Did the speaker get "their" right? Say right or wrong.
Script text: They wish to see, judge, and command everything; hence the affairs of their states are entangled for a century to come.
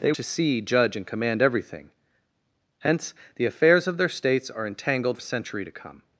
right